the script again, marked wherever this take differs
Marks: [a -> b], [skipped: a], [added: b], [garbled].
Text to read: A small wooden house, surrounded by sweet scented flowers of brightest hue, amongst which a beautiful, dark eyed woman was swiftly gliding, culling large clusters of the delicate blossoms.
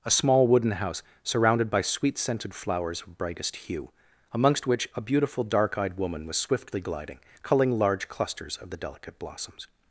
A small wooden house, surrounded by sweet scented flowers of brightest hue, amongst which a beautiful, dark eyed woman was swiftly gliding, culling large clusters of the delicate blossoms.